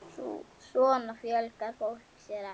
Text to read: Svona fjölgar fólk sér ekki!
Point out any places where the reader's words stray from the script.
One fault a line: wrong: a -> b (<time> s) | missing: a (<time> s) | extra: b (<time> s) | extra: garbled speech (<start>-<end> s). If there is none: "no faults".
no faults